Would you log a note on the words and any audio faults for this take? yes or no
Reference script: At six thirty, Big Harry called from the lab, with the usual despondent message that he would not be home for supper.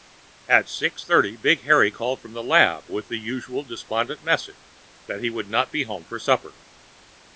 no